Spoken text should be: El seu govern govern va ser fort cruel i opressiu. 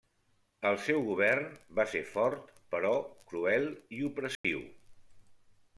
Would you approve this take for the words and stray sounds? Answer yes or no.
no